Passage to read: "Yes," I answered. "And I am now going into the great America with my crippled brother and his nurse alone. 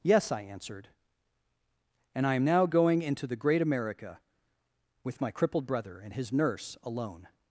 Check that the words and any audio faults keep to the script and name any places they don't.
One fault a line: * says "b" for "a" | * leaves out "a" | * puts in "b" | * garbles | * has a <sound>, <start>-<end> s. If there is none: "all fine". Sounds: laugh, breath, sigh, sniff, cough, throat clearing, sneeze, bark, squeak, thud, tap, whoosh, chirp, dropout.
all fine